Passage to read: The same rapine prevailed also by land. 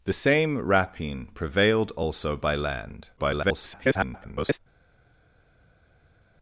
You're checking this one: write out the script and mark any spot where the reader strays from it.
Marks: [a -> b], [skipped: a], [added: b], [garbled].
The same rapine prevailed also by land. [garbled]